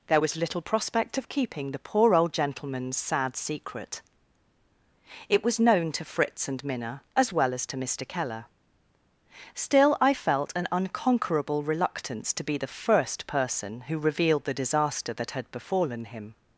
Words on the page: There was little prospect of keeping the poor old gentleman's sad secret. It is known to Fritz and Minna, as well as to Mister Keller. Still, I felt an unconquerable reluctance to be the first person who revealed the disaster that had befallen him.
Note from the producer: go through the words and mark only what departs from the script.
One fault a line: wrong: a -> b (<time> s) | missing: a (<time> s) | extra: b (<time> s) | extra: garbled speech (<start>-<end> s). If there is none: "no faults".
wrong: is -> was (5.4 s)